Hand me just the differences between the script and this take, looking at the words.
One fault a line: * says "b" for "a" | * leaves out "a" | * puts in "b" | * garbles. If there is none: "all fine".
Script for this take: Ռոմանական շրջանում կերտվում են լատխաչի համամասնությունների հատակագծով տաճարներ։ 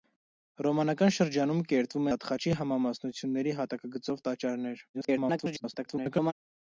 * leaves out "են"
* garbles